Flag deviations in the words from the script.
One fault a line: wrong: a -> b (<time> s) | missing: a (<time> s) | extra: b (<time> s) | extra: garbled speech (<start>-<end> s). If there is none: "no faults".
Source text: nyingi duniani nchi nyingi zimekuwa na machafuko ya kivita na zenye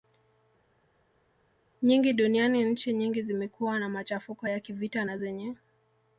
no faults